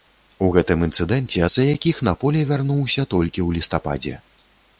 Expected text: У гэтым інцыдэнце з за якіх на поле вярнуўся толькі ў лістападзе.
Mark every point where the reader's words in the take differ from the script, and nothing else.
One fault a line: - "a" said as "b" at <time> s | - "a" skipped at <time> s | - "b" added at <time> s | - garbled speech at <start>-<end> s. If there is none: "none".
none